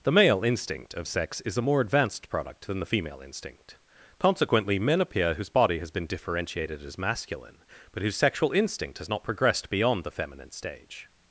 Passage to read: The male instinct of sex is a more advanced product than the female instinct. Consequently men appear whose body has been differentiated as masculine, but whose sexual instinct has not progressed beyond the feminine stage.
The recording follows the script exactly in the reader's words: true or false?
true